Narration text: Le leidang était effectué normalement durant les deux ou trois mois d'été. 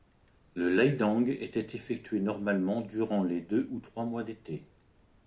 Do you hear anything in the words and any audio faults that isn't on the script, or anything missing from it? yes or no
no